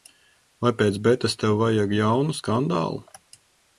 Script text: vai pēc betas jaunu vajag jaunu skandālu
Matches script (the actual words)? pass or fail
fail